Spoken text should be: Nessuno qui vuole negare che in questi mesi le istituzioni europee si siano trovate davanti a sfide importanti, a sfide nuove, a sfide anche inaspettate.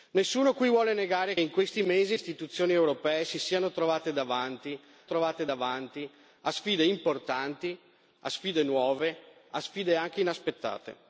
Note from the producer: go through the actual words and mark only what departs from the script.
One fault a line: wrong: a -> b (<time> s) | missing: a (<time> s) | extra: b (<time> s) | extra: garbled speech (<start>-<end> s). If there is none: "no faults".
missing: che (1.4 s)
missing: le (2.2 s)
extra: trovate davanti (5.0 s)